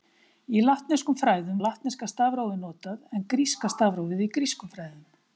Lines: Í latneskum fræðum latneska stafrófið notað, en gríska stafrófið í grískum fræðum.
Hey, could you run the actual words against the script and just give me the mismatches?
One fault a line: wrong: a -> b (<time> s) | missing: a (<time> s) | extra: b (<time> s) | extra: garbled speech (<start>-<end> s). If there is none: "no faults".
no faults